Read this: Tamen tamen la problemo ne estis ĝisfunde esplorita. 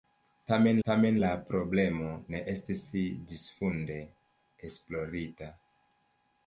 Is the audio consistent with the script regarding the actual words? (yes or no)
yes